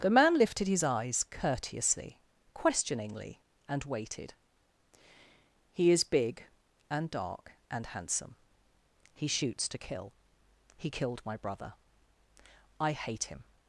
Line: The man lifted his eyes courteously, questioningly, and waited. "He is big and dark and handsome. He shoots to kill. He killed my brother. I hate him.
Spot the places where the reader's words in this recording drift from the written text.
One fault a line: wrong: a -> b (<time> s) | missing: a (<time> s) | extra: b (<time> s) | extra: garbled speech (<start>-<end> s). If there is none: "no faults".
no faults